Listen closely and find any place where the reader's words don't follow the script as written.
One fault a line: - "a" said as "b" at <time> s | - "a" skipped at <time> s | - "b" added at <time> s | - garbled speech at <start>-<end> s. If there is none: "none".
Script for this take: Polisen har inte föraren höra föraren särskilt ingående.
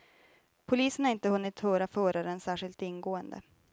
- "föraren" said as "hunnit" at 1.3 s